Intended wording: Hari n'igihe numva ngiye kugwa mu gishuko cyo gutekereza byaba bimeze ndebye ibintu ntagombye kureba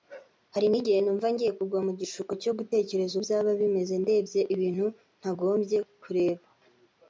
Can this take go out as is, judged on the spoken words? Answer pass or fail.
pass